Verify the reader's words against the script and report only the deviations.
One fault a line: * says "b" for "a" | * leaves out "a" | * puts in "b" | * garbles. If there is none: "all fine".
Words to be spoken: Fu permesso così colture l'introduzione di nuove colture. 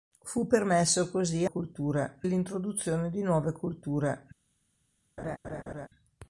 all fine